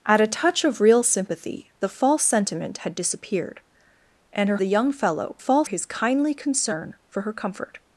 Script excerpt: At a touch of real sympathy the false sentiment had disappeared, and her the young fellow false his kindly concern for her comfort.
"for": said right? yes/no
yes